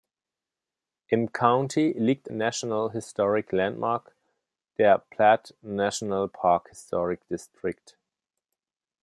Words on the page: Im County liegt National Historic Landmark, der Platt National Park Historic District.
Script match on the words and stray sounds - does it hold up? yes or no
yes